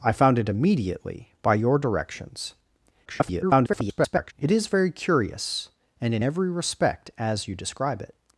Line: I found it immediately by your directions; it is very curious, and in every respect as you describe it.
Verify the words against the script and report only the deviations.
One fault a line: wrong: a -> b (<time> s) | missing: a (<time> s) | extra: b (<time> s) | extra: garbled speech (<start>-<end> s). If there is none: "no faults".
extra: garbled speech (3.1-4.3 s)